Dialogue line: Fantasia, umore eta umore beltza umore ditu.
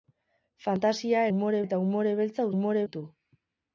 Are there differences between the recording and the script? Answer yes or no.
no